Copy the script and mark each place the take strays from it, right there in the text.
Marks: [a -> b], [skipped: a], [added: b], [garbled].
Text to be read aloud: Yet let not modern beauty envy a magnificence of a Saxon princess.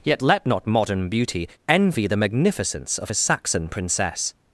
Yet let not modern beauty envy [a -> the] magnificence of a Saxon princess.